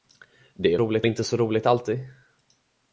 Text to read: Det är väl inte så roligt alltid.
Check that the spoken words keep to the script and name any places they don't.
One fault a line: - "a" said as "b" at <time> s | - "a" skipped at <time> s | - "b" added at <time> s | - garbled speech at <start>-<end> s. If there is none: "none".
- "väl" said as "roligt" at 0.8 s